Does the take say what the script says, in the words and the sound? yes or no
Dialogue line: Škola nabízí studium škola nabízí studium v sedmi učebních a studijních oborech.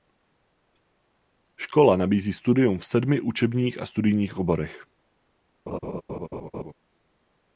no